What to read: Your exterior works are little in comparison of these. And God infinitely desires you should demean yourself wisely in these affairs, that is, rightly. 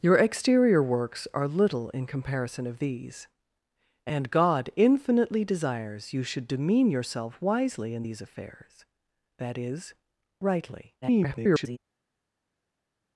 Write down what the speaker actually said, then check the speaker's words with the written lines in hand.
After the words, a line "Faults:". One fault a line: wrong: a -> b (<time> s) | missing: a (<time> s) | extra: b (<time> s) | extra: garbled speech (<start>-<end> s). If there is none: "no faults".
Your exterior works are little in comparison of these. And God infinitely desires you should demean yourself wisely in these affairs, that is, rightly. [garbled]
Faults:
extra: garbled speech (11.0-11.8 s)